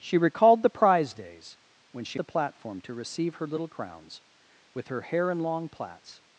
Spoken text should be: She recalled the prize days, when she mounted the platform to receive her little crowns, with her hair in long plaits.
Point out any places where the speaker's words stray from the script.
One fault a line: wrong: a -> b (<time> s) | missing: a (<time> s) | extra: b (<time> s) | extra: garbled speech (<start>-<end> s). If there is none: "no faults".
missing: mounted (2.2 s)